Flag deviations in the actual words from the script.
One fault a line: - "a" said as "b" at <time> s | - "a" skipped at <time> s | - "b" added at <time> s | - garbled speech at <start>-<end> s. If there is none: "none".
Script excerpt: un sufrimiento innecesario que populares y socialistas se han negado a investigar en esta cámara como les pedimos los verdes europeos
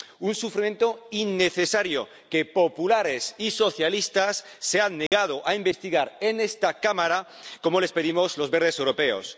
none